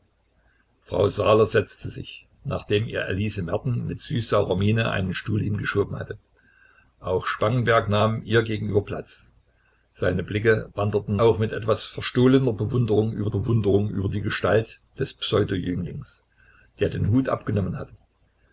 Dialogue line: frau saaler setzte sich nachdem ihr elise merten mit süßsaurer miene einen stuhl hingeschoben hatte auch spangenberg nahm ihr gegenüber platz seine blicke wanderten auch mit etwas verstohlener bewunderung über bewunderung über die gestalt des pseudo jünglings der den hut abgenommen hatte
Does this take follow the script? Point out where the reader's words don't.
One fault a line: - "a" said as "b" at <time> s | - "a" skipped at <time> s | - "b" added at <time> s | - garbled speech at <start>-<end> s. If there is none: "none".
none